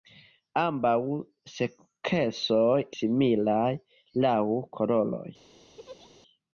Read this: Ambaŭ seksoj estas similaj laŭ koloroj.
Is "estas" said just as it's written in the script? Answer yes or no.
no